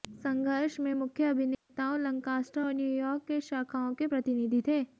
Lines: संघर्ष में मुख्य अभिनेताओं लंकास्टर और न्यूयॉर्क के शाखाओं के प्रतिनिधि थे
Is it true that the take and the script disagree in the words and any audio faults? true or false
true